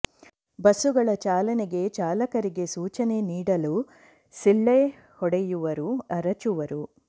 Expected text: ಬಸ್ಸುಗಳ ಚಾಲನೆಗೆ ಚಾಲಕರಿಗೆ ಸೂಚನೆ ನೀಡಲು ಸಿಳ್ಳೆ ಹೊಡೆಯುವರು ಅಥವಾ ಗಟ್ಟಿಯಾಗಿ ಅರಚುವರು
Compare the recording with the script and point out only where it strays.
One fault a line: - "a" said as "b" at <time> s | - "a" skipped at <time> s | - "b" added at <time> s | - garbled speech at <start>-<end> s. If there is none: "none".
- "ಅಥವಾ ಗಟ್ಟಿಯಾಗಿ" skipped at 5.9 s